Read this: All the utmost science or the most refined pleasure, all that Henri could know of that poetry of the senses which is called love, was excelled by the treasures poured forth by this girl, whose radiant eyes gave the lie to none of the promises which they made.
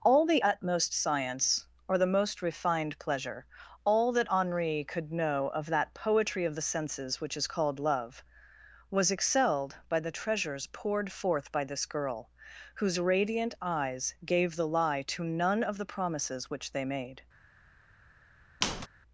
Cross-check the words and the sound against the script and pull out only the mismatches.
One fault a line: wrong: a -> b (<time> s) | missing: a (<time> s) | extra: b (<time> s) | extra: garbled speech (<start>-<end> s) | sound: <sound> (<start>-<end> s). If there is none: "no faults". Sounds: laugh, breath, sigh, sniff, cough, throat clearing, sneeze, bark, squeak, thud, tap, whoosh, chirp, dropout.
sound: squeak (18.6-18.9 s)